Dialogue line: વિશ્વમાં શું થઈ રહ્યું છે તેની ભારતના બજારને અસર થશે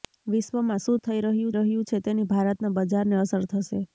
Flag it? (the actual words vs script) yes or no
yes